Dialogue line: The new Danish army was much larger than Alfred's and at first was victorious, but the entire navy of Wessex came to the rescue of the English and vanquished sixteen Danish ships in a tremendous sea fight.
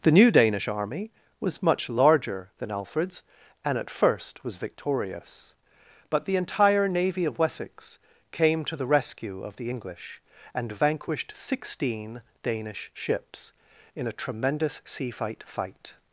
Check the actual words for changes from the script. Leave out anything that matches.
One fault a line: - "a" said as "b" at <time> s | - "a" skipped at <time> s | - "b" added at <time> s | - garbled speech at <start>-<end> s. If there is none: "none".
- "fight" added at 15.4 s